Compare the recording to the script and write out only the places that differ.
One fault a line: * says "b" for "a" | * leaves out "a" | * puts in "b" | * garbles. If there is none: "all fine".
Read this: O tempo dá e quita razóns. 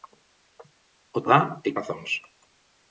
* leaves out "tempo"
* leaves out "quita"